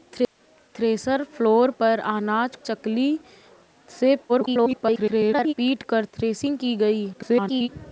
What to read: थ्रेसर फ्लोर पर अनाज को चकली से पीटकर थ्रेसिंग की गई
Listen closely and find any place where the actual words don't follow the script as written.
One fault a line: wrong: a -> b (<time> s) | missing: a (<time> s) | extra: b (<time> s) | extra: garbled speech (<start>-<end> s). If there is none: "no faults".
missing: को (2.6 s)
extra: garbled speech (4.3-5.5 s)
extra: garbled speech (7.1-7.7 s)